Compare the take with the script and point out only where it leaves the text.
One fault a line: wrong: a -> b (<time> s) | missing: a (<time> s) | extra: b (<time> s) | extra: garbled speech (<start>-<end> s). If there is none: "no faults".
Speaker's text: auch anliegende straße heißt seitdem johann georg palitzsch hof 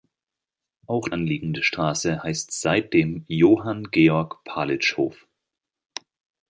no faults